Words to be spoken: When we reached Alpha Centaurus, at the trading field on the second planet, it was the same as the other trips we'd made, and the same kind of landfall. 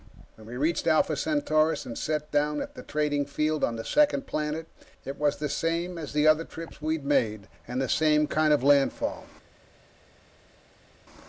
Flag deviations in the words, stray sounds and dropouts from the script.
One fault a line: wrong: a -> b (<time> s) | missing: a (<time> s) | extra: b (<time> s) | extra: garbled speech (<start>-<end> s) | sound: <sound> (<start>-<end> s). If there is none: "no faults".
extra: and set down (1.8 s)